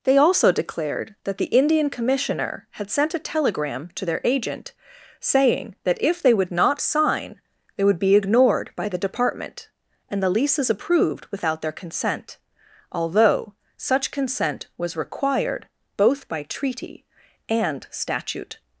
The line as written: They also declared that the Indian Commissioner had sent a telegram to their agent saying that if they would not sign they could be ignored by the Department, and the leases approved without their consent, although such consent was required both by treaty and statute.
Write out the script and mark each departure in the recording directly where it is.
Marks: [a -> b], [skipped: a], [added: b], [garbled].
They also declared that the Indian Commissioner had sent a telegram to their agent saying that if they would not sign they [could -> would] be ignored by the Department, and the leases approved without their consent, although such consent was required both by treaty and statute.